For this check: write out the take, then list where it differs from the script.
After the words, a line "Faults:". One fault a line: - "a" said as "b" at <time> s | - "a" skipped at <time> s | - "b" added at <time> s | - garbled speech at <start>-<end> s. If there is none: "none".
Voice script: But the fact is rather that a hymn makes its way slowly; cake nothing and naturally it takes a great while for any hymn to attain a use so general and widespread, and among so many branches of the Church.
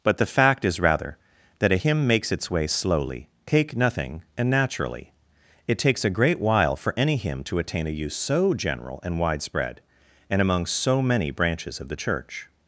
But the fact is rather that a hymn makes its way slowly; cake nothing and naturally it takes a great while for any hymn to attain a use so general and widespread, and among so many branches of the Church.
Faults:
none